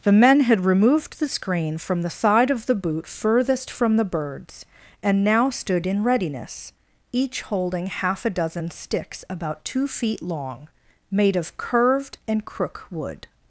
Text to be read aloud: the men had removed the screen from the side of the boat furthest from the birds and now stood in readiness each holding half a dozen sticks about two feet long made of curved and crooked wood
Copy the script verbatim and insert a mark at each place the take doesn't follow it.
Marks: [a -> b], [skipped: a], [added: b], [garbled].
the men had removed the screen from the side of the [boat -> boot] furthest from the birds and now stood in readiness each holding half a dozen sticks about two feet long made of curved and [crooked -> crook] wood